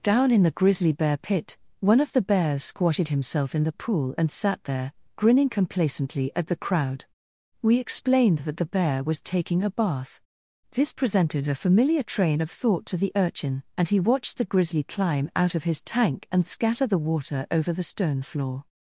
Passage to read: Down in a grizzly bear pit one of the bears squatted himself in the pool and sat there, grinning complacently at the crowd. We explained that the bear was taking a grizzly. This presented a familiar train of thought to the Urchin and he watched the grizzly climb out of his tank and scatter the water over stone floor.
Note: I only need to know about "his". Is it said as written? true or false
true